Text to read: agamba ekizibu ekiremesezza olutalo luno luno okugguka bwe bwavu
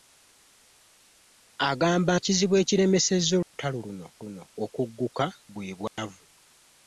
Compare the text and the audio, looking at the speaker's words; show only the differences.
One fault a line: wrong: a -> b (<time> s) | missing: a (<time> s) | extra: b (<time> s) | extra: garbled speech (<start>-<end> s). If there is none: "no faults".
no faults